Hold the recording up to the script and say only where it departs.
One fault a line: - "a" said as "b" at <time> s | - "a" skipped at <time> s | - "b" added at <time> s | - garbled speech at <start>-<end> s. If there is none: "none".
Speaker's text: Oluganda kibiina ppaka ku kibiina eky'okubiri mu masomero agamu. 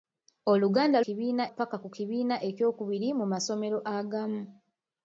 none